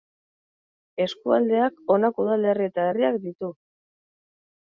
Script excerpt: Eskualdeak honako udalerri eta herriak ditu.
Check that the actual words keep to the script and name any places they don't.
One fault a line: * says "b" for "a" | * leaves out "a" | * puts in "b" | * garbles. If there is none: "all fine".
all fine